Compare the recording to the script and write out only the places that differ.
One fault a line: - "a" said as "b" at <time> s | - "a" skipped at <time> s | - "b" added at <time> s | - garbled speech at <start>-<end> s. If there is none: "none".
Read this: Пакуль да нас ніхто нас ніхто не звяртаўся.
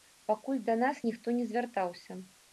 - "нас ніхто" skipped at 1.3 s